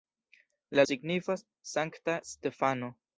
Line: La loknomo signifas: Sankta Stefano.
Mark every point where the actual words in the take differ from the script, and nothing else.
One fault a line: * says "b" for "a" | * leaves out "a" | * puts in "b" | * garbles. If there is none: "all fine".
* leaves out "loknomo"